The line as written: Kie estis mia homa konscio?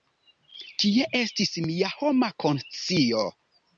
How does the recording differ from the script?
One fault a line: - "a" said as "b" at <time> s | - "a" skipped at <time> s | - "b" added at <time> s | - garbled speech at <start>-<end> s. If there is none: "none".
none